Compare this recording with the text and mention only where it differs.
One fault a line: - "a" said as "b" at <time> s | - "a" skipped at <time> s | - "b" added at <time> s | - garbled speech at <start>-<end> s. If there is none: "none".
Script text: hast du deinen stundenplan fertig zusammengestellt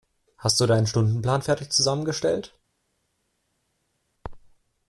none